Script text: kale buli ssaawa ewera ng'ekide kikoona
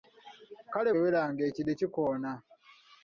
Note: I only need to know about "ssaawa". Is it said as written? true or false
false